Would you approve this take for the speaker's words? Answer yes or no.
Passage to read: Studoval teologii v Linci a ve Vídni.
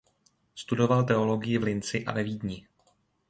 yes